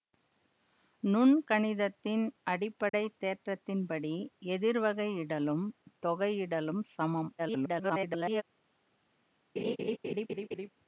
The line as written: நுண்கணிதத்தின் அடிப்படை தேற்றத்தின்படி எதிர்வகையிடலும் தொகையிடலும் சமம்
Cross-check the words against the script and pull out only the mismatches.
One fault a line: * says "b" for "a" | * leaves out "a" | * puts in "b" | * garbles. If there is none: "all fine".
* garbles